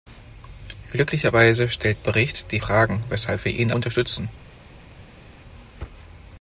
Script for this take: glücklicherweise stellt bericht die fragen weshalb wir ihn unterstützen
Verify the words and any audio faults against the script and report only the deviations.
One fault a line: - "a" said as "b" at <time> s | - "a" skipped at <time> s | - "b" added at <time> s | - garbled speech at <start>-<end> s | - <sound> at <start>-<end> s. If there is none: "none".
none